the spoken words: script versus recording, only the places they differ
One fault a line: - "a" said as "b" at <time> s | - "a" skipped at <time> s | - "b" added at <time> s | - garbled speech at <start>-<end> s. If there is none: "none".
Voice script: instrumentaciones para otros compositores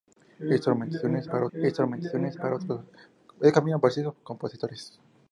- "instrumentaciones para" added at 1.5 s